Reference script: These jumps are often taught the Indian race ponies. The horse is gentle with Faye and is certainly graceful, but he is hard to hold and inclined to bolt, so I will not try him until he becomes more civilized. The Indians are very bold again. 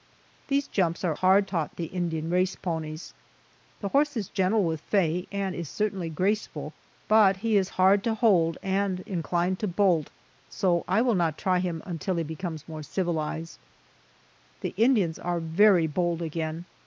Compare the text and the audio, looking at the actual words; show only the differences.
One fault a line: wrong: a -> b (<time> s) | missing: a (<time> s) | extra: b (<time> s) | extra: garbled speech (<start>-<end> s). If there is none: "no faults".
wrong: often -> hard (1.2 s)